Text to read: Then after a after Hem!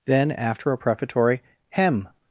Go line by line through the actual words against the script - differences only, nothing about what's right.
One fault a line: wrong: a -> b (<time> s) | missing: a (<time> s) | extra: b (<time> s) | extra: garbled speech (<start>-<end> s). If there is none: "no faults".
wrong: after -> prefatory (0.8 s)